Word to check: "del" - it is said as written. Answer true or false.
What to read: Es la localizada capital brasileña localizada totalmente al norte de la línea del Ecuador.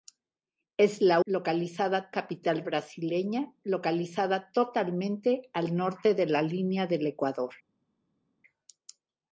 true